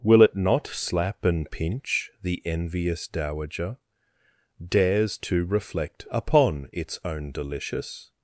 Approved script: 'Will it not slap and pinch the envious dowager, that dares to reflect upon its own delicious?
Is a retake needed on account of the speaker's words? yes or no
yes